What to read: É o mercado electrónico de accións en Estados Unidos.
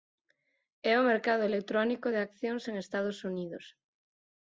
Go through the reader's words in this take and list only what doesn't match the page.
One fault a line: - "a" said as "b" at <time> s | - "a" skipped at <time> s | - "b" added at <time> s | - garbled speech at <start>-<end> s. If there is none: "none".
none